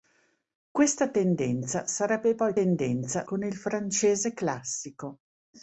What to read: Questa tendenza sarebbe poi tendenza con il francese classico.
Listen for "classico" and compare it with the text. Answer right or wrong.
right